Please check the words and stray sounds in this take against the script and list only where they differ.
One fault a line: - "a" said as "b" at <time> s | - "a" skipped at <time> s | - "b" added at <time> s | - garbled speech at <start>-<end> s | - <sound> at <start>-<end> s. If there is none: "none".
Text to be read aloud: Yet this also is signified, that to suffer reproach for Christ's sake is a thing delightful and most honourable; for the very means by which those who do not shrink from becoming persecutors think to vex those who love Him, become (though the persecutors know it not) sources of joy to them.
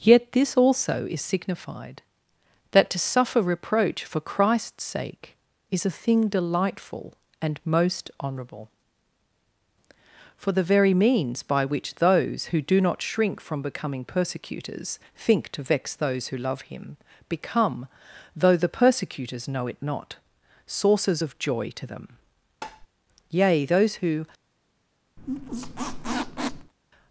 - tap at 22.6-22.9 s
- "Yea those who" added at 23.3 s
- squeak at 25.2-26.7 s